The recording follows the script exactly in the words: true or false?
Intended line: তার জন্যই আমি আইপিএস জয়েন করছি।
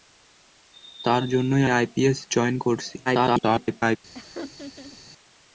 false